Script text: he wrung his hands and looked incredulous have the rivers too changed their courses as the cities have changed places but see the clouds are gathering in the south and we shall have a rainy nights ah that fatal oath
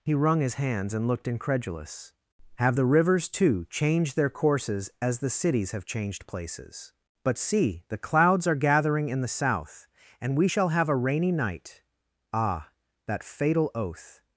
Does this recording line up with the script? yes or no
no